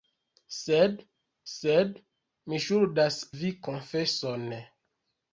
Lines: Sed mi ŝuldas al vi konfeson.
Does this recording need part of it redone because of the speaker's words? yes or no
yes